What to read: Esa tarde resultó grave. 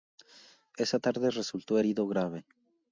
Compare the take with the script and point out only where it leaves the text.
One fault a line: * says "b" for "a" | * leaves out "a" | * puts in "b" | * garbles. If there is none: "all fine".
* puts in "herido"